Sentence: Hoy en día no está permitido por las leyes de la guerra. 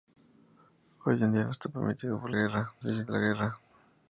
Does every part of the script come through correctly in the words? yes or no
no